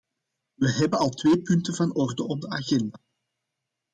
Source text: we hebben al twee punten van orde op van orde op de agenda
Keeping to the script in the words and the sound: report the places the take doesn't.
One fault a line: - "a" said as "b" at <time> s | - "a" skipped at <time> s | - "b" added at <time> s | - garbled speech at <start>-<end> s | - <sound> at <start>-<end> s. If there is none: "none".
- "van orde op" skipped at 2.4 s